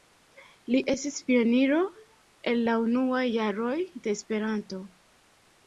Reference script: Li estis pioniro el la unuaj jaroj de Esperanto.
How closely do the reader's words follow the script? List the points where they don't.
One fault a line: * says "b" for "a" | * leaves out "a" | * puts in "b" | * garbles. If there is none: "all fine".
all fine